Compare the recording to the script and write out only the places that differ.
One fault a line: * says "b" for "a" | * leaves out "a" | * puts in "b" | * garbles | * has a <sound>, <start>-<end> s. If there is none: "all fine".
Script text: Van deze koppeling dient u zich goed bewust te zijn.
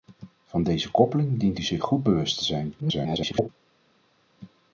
* garbles